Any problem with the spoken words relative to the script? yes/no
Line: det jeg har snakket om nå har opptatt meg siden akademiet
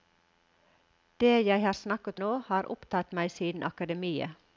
yes